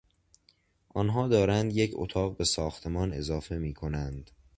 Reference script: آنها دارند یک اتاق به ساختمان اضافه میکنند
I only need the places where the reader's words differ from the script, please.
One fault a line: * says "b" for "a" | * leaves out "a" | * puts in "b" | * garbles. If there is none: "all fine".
all fine